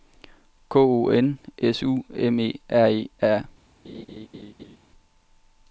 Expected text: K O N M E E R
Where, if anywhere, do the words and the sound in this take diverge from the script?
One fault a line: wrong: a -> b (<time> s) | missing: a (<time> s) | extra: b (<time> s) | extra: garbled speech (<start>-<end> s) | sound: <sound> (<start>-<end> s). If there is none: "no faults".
extra: S U (1.6 s)
extra: R (2.7 s)
sound: laugh (3.8-4.8 s)